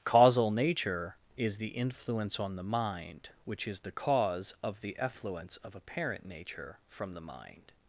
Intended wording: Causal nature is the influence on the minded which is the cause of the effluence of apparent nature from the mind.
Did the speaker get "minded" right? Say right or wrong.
wrong